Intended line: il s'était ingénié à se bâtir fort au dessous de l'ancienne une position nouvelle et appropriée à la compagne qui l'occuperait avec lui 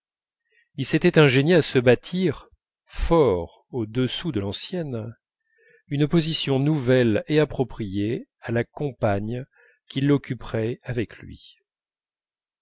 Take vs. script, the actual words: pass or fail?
pass